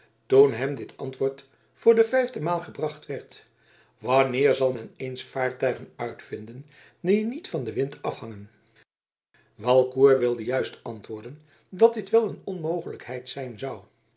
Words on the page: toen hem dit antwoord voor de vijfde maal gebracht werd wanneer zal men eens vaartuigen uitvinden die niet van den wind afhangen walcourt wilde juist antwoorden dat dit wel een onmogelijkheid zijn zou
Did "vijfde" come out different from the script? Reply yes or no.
no